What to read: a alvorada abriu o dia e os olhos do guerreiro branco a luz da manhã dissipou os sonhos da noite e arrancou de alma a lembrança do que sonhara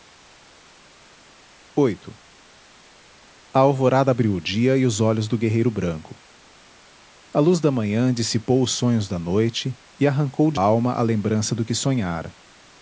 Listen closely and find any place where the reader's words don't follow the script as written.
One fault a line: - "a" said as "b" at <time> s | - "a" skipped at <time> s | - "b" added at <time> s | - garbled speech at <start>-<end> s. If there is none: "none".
none